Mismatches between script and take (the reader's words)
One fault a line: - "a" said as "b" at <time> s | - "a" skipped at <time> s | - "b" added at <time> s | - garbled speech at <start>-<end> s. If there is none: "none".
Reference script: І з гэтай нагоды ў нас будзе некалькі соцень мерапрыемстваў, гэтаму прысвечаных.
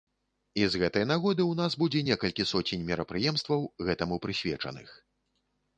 none